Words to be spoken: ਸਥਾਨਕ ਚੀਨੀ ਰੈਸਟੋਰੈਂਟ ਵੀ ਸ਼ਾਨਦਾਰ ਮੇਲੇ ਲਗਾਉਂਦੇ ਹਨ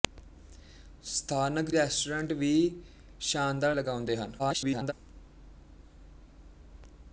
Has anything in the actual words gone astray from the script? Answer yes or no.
yes